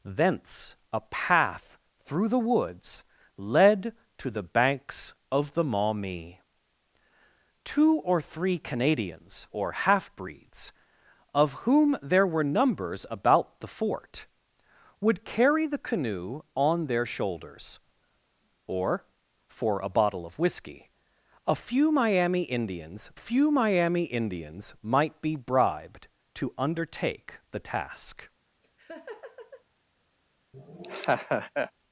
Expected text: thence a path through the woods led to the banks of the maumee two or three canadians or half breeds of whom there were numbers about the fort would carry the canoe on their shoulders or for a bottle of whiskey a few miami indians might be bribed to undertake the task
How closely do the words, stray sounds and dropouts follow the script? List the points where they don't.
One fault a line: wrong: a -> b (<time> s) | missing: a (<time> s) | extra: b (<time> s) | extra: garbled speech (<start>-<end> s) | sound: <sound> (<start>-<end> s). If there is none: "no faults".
extra: few miami indians (23.1 s)
sound: laugh (28.6-29.6 s)
sound: laugh (30.5-31.7 s)